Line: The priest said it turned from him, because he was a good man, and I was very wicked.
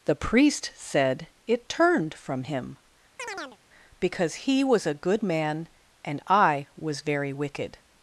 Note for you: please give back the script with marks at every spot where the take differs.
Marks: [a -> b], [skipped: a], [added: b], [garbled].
The priest said it turned from him, because he was a good man, and I was very wicked.